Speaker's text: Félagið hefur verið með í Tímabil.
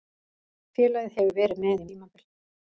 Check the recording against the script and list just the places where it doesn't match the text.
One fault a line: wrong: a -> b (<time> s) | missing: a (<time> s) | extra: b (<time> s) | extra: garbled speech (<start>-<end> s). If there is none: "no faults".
no faults